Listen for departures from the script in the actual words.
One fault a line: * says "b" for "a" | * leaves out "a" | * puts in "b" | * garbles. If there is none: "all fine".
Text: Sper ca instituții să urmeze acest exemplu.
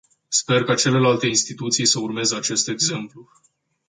* puts in "celelalte"